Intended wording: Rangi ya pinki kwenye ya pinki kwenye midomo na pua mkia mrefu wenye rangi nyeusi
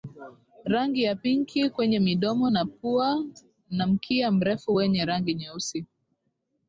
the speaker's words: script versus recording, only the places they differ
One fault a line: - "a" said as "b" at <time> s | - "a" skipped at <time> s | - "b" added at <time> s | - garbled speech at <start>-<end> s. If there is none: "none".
- "ya pinki kwenye" skipped at 2.0 s
- "na" added at 3.7 s